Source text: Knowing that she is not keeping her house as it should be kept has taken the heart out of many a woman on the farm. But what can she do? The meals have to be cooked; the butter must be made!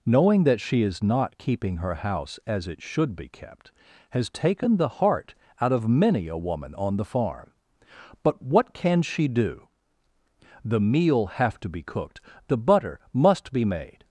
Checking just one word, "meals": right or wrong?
wrong